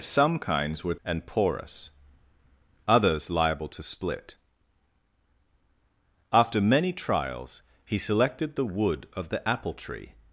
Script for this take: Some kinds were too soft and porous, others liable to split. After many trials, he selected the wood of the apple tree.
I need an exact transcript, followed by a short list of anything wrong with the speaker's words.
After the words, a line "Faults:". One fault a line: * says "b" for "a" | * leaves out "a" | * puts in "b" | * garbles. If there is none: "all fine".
Some kinds were and porous, others liable to split. After many trials, he selected the wood of the apple tree.
Faults:
* leaves out "too soft"